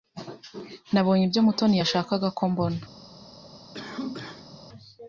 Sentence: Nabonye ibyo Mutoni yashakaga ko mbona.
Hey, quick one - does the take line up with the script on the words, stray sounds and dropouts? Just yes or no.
no